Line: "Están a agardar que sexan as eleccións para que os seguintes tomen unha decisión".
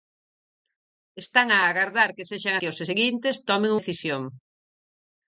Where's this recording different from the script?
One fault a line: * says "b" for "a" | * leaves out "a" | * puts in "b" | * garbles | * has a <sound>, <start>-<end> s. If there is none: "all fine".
* leaves out "as eleccións para"
* leaves out "unha"